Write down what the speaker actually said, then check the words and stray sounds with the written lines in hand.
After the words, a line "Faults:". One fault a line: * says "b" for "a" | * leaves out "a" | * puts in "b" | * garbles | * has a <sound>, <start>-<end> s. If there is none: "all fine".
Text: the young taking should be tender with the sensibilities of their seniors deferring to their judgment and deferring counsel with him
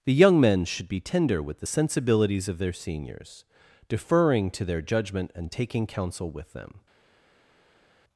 the young men should be tender with the sensibilities of their seniors deferring to their judgment and taking counsel with them
Faults:
* says "men" for "taking"
* says "taking" for "deferring"
* says "them" for "him"